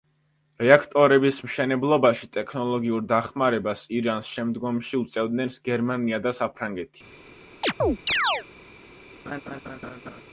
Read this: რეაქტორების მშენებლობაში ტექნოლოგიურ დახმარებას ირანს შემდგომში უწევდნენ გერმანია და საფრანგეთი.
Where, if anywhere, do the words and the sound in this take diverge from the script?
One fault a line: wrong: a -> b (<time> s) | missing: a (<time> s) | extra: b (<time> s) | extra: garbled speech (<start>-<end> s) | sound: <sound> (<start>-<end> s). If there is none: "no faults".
sound: chirp (7.6-8.4 s)
sound: laugh (9.3-10.2 s)